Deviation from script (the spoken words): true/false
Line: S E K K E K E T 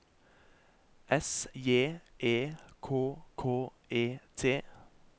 true